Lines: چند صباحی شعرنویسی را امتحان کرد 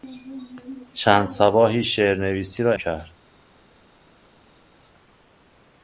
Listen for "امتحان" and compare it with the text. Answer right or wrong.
wrong